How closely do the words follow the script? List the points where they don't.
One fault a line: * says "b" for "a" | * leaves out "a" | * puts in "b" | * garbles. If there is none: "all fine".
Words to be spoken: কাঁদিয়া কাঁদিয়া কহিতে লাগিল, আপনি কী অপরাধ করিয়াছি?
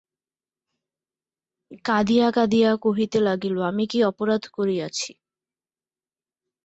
* says "আমি" for "আপনি"